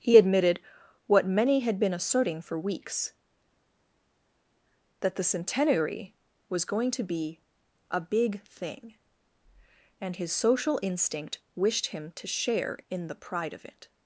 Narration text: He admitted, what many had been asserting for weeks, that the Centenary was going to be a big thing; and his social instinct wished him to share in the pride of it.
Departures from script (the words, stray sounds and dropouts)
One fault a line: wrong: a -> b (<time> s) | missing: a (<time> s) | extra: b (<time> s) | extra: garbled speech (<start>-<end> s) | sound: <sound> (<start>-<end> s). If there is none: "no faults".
no faults